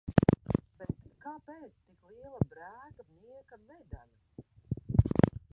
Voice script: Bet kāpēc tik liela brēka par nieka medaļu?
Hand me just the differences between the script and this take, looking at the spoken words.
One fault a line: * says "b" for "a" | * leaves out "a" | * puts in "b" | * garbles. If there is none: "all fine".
* leaves out "par"